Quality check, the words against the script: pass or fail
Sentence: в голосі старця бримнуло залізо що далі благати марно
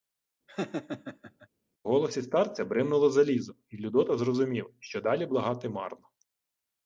fail